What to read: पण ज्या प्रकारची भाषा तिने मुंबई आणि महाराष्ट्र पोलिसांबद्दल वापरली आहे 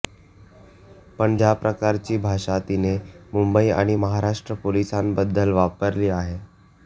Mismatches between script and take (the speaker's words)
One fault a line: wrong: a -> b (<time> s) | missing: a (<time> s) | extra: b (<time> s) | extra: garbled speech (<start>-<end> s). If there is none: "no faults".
no faults